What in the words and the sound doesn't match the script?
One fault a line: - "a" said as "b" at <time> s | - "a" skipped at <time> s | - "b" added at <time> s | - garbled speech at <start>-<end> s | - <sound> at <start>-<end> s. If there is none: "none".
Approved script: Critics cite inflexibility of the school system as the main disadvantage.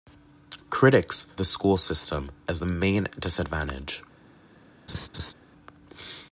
- "cite inflexibility of" skipped at 1.3 s
- laugh at 4.9-5.3 s